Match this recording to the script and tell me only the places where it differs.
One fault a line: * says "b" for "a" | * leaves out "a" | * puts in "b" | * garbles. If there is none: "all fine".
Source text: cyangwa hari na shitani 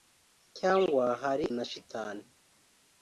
all fine